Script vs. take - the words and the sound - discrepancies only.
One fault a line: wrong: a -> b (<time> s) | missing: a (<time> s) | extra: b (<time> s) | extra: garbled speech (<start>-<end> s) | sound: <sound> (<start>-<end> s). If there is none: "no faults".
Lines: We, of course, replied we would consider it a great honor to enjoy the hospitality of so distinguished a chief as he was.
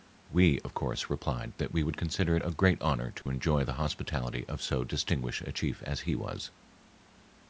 extra: that (1.6 s)
sound: dropout (3.2-3.3 s)